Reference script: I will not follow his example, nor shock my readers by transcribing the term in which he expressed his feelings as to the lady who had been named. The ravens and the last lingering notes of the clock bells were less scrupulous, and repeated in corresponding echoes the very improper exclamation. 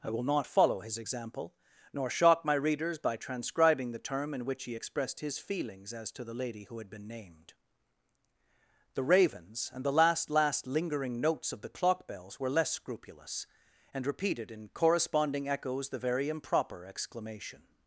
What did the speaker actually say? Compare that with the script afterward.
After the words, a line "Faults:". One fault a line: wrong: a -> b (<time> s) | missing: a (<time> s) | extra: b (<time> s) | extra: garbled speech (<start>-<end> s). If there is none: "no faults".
I will not follow his example, nor shock my readers by transcribing the term in which he expressed his feelings as to the lady who had been named. The ravens and the last last lingering notes of the clock bells were less scrupulous, and repeated in corresponding echoes the very improper exclamation.
Faults:
extra: last (10.3 s)